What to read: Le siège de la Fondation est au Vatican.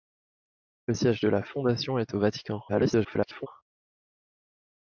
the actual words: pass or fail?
fail